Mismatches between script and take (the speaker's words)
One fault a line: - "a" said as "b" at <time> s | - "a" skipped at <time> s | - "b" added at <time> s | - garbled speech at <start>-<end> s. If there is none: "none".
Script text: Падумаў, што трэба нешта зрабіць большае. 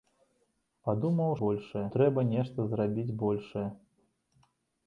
- "што" said as "большае" at 1.4 s